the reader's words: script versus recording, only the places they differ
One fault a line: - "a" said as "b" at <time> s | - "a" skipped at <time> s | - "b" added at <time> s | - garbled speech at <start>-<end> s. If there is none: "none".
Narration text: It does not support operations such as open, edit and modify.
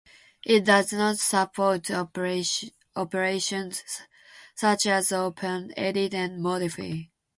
none